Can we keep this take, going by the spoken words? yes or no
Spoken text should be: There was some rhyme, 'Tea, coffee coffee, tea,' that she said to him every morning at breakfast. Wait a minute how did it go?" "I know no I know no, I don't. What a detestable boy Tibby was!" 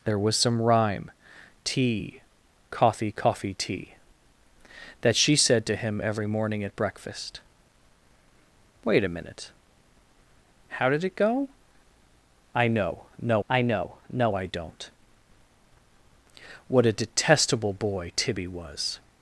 yes